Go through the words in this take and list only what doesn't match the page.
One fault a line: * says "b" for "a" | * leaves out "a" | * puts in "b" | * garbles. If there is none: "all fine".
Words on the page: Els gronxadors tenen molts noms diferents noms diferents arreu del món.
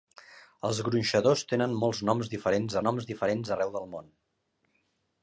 all fine